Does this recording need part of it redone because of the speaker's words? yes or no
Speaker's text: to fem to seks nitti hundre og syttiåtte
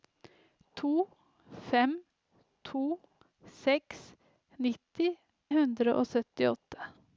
no